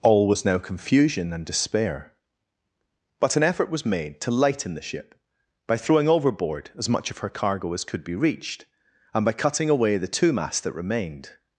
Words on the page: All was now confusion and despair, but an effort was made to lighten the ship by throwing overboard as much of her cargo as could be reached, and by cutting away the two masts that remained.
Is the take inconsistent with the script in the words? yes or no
no